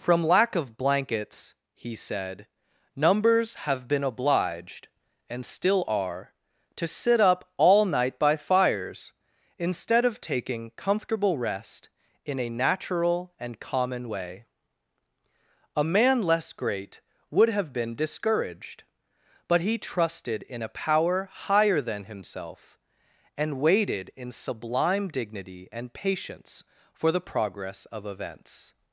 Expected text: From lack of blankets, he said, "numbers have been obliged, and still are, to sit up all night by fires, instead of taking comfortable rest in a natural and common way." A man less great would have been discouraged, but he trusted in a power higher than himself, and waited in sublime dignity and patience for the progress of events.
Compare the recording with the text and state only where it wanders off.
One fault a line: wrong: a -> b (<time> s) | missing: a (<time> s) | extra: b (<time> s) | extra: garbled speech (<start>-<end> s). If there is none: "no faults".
no faults